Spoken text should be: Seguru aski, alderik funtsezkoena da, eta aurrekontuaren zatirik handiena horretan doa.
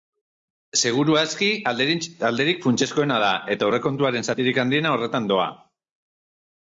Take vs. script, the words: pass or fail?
pass